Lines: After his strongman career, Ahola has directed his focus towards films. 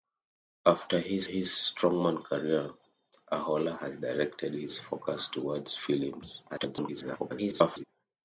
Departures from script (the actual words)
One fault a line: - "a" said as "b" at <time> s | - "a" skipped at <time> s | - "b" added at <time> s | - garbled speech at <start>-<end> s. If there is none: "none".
- "his" added at 1.2 s
- garbled speech at 6.5-7.8 s